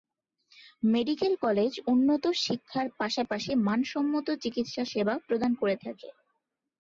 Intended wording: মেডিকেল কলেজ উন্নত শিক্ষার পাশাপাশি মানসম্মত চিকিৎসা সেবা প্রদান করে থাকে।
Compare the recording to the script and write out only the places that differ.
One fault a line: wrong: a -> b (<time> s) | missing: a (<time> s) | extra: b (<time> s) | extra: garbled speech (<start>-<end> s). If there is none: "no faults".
no faults